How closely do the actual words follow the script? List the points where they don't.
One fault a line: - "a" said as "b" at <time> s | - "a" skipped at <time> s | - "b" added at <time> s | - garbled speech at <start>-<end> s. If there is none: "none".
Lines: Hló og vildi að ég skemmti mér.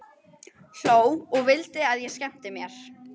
none